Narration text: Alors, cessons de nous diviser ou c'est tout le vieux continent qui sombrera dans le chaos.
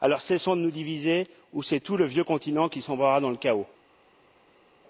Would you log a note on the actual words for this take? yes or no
no